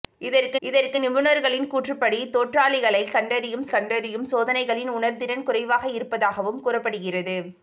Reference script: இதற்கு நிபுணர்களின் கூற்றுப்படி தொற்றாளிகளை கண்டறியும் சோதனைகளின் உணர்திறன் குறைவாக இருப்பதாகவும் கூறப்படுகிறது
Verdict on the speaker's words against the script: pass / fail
fail